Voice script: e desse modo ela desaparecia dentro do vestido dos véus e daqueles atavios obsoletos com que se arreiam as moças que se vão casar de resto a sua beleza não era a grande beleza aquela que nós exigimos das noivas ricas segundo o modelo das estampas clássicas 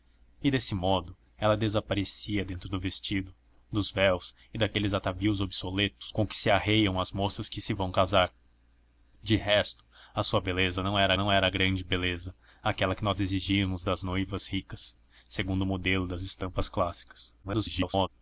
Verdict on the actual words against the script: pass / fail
fail